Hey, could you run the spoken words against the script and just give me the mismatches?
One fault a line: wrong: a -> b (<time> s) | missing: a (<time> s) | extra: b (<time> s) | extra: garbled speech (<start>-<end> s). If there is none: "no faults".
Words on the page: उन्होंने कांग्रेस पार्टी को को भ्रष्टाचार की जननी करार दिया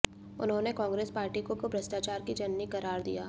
no faults